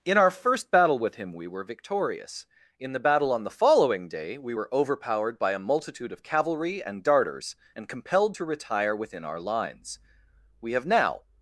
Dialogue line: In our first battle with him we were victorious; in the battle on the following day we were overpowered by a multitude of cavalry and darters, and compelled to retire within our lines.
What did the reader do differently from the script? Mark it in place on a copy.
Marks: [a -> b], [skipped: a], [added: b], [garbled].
In our first battle with him we were victorious; in the battle on the following day we were overpowered by a multitude of cavalry and darters, and compelled to retire within our lines. [added: We have now]